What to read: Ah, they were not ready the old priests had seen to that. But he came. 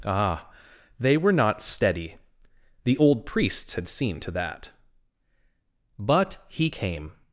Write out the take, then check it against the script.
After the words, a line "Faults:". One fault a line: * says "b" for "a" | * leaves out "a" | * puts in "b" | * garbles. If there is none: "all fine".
Ah, they were not steady the old priests had seen to that. But he came.
Faults:
* says "steady" for "ready"